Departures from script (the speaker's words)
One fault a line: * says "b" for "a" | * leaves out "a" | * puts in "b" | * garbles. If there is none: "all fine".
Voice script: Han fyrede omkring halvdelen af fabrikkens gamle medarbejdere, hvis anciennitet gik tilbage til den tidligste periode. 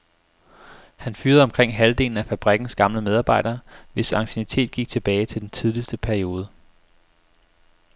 all fine